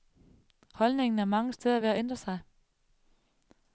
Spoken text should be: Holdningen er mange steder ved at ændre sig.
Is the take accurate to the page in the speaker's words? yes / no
yes